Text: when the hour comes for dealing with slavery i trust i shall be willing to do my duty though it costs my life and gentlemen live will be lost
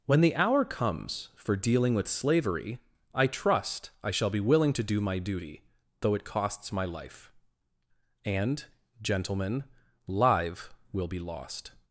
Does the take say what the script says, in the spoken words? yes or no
yes